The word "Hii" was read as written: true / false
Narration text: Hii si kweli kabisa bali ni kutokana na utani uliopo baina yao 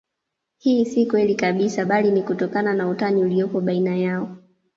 true